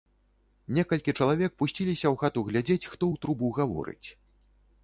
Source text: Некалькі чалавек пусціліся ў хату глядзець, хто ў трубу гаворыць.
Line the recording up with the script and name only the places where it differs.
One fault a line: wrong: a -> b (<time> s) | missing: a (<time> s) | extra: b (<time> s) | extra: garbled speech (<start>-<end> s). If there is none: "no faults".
no faults